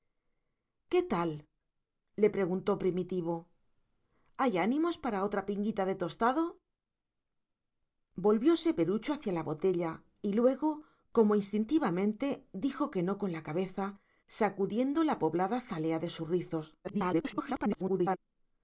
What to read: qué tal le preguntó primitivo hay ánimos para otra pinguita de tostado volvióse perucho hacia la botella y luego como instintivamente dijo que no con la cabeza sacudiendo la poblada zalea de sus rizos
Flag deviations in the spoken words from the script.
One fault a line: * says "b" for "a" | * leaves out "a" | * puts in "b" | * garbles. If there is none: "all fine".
* garbles